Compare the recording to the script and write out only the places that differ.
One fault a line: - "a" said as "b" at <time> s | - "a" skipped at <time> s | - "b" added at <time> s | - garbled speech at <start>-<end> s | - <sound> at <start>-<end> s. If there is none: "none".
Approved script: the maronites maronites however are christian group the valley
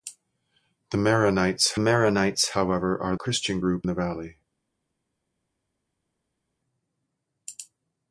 none